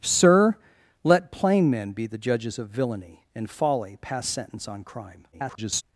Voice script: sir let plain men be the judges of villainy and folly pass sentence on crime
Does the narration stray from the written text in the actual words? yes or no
yes